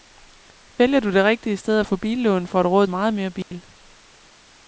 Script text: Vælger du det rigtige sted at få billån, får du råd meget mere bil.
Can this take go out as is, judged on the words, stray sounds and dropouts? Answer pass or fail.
fail